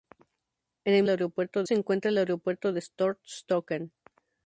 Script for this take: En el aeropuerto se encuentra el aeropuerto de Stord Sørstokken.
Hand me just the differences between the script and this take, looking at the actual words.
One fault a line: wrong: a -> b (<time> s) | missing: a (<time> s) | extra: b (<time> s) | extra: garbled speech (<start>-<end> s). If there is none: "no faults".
no faults